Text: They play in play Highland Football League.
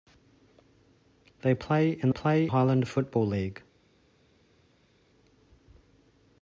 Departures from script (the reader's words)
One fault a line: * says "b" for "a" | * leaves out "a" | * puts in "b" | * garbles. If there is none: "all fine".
all fine